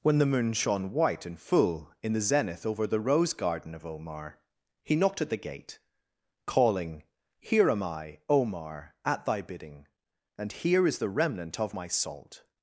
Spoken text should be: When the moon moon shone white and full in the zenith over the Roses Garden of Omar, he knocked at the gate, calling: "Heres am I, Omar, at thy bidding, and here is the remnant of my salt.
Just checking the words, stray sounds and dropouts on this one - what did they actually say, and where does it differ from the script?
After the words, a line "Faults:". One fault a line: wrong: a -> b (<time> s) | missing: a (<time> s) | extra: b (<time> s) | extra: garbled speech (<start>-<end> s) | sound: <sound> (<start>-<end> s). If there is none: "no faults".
When the moon shone white and full in the zenith over the Rose Garden of Omar, he knocked at the gate, calling: "Here am I, Omar, at thy bidding, and here is the remnant of my salt.
Faults:
missing: moon (0.5 s)
wrong: Roses -> Rose (3.0 s)
wrong: Heres -> Here (7.4 s)